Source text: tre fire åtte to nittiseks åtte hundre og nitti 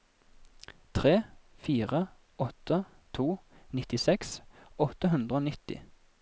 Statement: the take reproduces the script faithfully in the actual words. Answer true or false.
true